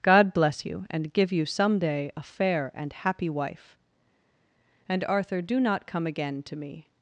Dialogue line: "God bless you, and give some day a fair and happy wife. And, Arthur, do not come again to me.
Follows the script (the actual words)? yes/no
no